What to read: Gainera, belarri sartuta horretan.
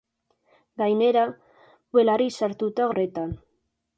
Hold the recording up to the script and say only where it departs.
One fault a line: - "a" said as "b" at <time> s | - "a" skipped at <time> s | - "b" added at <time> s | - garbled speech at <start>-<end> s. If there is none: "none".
none